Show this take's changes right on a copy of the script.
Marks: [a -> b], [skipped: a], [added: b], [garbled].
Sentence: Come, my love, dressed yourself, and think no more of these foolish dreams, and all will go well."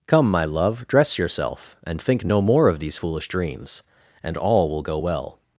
Come, my love, [dressed -> dress] yourself, and think no more of these foolish dreams, and all will go well."